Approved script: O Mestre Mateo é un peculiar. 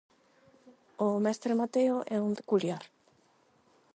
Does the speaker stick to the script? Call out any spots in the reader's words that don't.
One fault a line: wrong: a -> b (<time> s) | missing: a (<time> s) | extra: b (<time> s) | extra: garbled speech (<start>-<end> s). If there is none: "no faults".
no faults